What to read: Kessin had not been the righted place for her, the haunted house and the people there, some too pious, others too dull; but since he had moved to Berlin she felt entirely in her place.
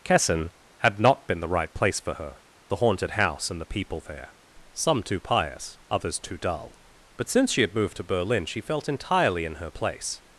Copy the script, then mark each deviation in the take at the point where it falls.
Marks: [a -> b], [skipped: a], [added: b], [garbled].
Kessin had not been the [righted -> right] place for her, the haunted house and the people there, some too pious, others too dull; but since [he -> she] had moved to Berlin she felt entirely in her place.